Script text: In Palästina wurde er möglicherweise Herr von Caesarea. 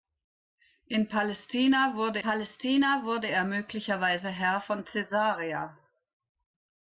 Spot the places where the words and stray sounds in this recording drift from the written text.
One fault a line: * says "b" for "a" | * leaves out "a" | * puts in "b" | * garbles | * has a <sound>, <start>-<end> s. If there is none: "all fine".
* puts in "Palästina wurde"